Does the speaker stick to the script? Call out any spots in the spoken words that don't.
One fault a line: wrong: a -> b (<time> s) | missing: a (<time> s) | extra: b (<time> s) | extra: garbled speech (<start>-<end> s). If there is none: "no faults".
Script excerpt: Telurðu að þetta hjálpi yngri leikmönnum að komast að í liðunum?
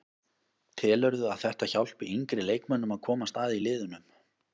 no faults